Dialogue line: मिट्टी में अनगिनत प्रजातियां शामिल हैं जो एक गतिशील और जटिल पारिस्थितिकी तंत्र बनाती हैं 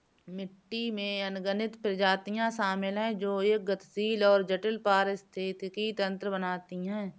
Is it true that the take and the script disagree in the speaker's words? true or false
false